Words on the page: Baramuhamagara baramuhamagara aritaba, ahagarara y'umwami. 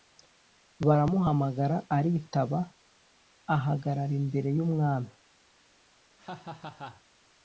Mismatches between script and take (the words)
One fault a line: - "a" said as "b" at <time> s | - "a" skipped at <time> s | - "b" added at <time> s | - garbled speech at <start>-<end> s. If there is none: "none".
- "baramuhamagara" skipped at 1.8 s
- "imbere" added at 4.2 s